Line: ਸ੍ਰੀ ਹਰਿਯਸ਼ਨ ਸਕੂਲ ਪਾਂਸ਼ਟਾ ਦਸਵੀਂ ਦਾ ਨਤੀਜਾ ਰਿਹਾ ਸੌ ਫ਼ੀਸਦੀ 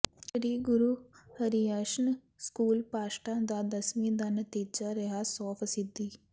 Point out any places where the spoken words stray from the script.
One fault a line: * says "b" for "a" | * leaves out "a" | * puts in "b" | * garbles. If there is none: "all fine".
* puts in "ਗੁਰੂ"
* puts in "ਦਾ"